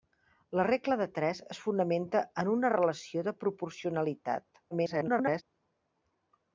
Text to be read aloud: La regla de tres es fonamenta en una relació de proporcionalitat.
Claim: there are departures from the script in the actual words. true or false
true